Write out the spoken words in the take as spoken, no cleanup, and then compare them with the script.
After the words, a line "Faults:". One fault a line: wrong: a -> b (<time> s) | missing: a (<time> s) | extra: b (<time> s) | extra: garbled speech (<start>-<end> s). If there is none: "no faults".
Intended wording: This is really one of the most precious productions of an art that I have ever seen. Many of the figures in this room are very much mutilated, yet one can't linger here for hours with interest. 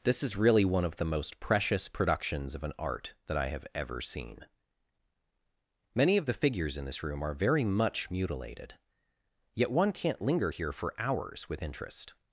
This is really one of the most precious productions of an art that I have ever seen. Many of the figures in this room are very much mutilated, yet one can't linger here for hours with interest.
Faults:
no faults